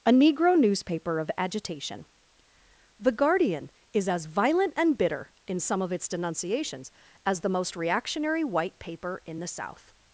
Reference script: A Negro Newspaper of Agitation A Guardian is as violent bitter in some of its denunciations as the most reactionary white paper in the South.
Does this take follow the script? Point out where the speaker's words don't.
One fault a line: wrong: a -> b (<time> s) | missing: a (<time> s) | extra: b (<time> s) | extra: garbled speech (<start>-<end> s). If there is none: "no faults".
wrong: A -> The (3.0 s)
extra: and (4.8 s)